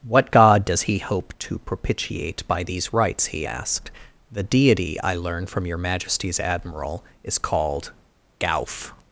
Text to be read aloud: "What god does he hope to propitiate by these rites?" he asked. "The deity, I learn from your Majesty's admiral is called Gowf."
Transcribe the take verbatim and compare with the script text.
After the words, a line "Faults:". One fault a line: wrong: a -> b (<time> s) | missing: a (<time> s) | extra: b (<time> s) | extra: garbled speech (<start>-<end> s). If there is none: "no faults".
"What god does he hope to propitiate by these rites?" he asked. "The deity, I learn from your Majesty's admiral is called Gowf."
Faults:
no faults